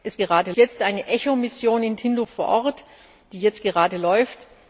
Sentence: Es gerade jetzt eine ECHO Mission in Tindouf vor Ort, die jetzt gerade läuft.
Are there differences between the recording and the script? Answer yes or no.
no